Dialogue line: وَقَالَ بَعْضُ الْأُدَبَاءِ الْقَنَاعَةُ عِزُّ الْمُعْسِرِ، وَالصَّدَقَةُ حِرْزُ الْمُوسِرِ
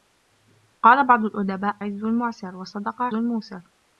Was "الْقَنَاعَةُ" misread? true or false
true